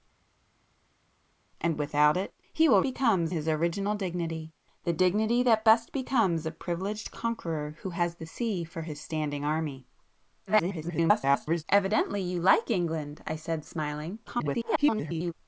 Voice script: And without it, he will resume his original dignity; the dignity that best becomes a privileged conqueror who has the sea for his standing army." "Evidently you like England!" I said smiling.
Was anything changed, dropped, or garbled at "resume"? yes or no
yes